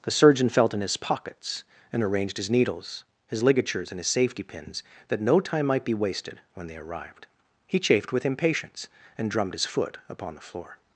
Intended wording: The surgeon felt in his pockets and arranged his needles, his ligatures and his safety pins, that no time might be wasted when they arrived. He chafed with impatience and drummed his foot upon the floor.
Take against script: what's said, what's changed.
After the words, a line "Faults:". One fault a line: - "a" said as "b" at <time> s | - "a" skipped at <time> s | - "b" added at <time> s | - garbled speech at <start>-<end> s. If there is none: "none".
The surgeon felt in his pockets and arranged his needles, his ligatures and his safety pins, that no time might be wasted when they arrived. He chafed with impatience and drummed his foot upon the floor.
Faults:
none